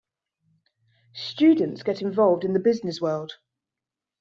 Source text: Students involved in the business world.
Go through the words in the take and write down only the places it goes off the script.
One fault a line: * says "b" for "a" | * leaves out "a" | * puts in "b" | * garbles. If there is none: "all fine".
* puts in "get"